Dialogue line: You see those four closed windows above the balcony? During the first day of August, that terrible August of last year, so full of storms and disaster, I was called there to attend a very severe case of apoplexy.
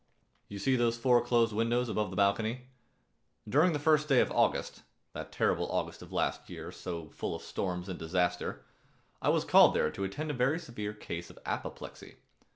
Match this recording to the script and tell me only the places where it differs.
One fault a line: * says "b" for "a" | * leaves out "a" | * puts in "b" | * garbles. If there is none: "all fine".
all fine